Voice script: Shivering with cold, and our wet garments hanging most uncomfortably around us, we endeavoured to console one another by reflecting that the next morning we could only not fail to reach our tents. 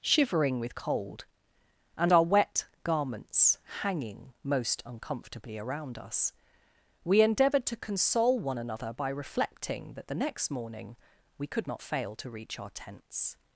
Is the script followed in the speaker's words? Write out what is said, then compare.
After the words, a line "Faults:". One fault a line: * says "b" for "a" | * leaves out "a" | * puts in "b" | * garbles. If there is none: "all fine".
Shivering with cold, and our wet garments hanging most uncomfortably around us, we endeavoured to console one another by reflecting that the next morning we could not fail to reach our tents.
Faults:
* leaves out "only"